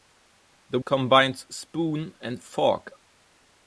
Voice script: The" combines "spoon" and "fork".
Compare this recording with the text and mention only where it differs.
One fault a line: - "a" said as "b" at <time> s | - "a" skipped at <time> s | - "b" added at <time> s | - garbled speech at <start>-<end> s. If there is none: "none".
none